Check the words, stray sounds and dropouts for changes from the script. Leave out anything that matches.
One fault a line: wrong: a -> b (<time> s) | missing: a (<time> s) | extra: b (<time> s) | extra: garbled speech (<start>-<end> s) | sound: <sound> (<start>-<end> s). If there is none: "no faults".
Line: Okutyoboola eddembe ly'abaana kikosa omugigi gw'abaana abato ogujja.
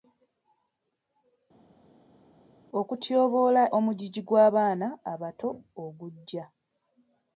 missing: eddembe ly'abaana kikosa (3.6 s)